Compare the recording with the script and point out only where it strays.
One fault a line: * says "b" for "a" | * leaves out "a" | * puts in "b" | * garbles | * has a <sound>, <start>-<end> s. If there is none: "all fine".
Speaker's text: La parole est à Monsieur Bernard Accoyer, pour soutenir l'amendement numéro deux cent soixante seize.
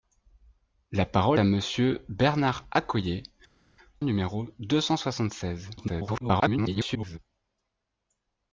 * leaves out "est"
* leaves out "pour soutenir l'amendement"
* garbles